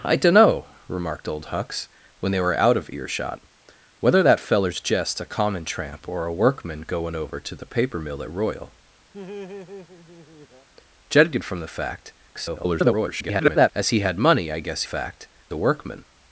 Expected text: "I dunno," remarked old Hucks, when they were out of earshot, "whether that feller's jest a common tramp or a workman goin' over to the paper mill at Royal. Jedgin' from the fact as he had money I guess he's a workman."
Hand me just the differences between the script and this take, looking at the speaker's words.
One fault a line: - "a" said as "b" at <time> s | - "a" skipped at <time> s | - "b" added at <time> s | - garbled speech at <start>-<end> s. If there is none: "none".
- garbled speech at 12.3-13.7 s
- "he's" said as "fact" at 14.8 s